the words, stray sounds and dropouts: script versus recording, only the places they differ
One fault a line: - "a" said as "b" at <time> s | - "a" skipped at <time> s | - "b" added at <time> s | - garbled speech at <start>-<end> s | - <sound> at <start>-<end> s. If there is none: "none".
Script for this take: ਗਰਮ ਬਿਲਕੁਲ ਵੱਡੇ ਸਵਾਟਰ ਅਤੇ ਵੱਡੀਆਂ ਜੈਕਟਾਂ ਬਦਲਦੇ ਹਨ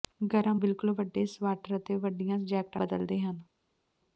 none